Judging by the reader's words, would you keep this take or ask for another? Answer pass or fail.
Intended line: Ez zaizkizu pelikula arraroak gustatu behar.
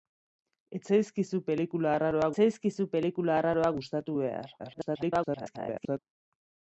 fail